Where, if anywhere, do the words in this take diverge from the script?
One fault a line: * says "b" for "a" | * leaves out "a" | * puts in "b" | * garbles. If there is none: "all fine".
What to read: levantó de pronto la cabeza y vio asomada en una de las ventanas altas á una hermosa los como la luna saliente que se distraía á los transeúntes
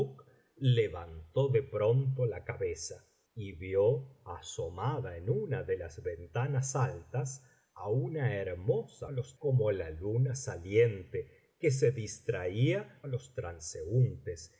all fine